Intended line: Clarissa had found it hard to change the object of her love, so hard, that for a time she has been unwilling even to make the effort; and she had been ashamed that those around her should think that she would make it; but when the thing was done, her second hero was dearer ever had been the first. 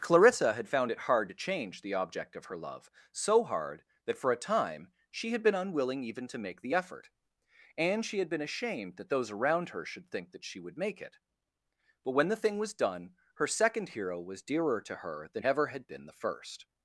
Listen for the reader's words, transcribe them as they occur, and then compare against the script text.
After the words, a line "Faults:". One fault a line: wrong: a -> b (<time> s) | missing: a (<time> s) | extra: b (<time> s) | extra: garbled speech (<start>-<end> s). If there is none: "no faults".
Clarissa had found it hard to change the object of her love, so hard, that for a time she had been unwilling even to make the effort; and she had been ashamed that those around her should think that she would make it; but when the thing was done, her second hero was dearer to her than ever had been the first.
Faults:
wrong: has -> had (5.3 s)
extra: to her than (14.8 s)